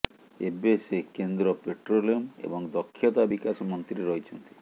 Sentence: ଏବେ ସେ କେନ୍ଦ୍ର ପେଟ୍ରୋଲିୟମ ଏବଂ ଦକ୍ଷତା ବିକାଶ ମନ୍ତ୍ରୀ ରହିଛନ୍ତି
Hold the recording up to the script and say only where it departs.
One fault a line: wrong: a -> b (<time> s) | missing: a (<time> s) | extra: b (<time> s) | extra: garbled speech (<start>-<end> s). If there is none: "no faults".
no faults